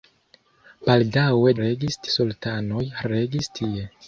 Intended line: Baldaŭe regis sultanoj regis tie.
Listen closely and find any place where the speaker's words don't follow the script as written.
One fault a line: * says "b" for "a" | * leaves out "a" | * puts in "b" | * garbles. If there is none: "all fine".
all fine